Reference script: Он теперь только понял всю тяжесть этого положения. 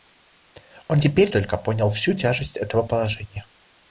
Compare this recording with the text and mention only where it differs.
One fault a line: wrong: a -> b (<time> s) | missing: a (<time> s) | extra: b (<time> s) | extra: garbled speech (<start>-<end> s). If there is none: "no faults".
no faults